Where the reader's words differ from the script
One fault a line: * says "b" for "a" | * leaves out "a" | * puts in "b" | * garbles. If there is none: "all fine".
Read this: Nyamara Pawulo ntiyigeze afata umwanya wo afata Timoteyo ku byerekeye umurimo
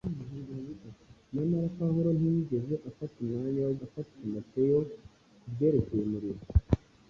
all fine